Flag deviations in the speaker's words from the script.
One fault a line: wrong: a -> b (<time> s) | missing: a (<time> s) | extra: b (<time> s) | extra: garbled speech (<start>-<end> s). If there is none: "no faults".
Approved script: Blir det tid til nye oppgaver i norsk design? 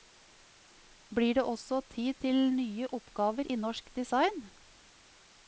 extra: også (1.4 s)